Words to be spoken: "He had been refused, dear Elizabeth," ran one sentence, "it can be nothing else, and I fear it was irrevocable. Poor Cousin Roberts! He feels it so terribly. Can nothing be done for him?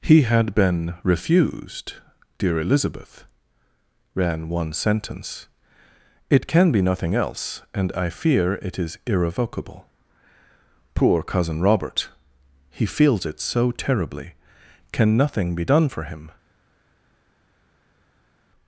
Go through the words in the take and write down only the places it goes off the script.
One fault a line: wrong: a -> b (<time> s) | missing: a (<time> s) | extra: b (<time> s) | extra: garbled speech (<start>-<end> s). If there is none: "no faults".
wrong: was -> is (8.8 s)
wrong: Roberts -> Robert (11.6 s)